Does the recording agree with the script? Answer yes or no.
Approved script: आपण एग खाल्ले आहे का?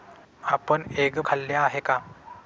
yes